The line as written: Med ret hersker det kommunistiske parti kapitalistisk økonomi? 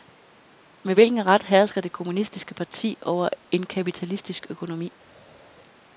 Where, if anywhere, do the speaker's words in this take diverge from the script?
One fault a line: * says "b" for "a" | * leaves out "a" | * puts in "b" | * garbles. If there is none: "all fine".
* puts in "hvilken"
* puts in "over en"